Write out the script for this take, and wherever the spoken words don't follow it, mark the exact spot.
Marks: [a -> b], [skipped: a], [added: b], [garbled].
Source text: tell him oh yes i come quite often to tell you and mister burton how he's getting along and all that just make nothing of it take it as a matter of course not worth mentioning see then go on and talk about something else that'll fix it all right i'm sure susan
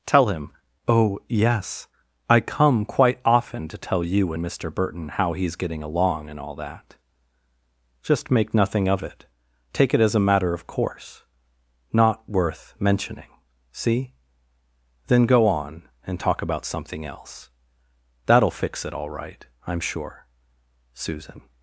tell him oh yes i come quite often to tell you and mister burton how he's getting along and all that just make nothing of it take it as a matter of course not worth mentioning see then go on and talk about something else that'll fix it all right i'm sure susan